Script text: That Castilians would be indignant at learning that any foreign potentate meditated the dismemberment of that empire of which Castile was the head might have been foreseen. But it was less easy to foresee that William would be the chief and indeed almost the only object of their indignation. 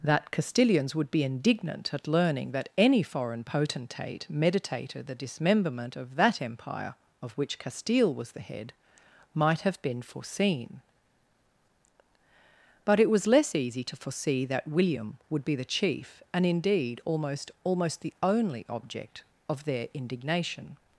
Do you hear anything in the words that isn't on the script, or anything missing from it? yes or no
yes